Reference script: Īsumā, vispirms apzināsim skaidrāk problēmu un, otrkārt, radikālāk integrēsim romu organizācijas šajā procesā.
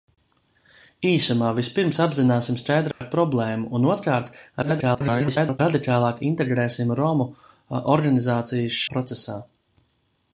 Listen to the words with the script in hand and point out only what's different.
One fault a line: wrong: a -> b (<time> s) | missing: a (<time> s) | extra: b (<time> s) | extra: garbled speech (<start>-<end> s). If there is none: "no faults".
extra: garbled speech (4.6-5.6 s)
missing: šajā (8.8 s)